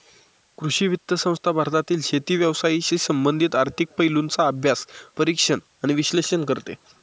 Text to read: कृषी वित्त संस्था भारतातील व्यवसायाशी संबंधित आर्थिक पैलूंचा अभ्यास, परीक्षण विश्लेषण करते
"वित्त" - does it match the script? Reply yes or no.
yes